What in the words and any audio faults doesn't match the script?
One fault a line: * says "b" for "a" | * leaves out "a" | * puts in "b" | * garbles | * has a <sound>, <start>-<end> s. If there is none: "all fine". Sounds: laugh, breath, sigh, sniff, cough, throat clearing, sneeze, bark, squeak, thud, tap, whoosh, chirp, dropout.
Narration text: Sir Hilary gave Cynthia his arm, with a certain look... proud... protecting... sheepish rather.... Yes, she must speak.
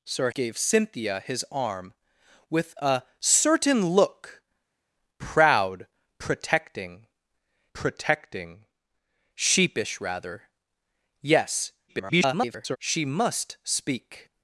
* leaves out "Hilary"
* puts in "protecting"
* garbles